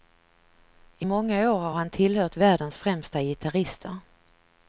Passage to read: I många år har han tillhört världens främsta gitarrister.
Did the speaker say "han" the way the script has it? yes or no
yes